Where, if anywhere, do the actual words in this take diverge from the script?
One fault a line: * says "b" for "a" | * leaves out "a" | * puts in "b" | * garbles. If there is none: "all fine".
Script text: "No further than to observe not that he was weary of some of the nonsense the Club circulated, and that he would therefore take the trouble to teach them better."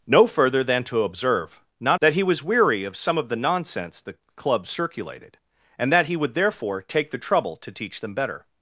all fine